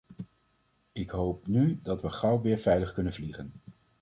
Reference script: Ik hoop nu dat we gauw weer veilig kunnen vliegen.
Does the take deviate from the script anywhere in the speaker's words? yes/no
no